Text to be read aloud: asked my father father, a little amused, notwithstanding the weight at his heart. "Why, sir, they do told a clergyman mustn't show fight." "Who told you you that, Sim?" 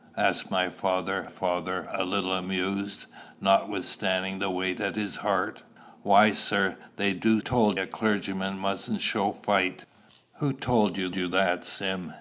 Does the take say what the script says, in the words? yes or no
yes